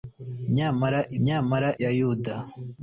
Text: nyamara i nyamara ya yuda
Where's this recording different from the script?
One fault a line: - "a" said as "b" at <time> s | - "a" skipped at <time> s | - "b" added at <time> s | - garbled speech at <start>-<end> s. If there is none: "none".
none